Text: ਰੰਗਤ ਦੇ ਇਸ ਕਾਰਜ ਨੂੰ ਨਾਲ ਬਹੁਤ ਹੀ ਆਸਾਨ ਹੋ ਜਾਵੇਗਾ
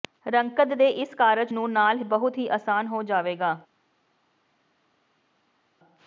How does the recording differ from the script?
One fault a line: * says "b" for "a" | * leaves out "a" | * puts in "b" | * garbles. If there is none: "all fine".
all fine